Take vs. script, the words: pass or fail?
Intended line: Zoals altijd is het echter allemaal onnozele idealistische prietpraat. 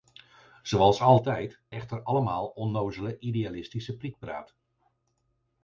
fail